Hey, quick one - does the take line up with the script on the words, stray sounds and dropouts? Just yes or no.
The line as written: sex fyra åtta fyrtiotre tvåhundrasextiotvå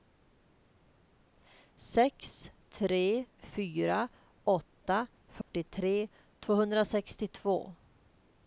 no